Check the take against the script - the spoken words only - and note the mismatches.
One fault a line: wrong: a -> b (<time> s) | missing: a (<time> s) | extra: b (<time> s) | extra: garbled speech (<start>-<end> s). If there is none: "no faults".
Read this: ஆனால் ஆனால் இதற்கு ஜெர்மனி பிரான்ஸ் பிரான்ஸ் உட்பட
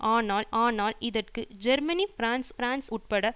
no faults